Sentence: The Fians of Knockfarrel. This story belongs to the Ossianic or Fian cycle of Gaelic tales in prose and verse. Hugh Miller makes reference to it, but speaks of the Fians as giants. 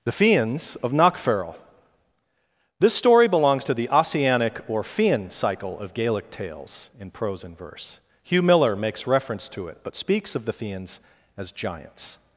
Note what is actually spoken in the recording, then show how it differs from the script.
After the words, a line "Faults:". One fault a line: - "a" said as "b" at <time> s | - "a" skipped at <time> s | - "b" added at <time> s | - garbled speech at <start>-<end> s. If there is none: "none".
The Fians of Knockfarrel. This story belongs to the Ossianic or Fian cycle of Gaelic tales in prose and verse. Hugh Miller makes reference to it, but speaks of the Fians as giants.
Faults:
none